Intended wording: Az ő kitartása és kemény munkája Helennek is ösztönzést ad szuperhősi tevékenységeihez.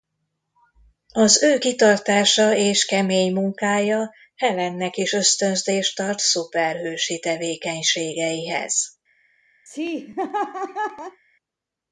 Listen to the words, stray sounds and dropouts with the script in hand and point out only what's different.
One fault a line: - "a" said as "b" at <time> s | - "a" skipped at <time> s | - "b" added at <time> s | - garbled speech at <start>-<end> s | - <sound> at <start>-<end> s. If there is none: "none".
- laugh at 9.7-11.2 s